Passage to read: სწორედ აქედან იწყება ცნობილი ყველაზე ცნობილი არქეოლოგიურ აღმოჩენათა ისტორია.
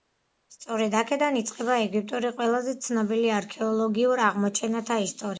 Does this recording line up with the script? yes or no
no